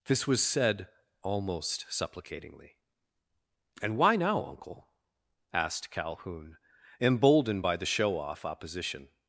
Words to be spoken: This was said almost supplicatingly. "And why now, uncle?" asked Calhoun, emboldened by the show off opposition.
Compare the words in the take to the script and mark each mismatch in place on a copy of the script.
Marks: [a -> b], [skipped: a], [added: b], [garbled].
This was said almost supplicatingly. "And why now, uncle?" asked Calhoun, emboldened by the show off opposition.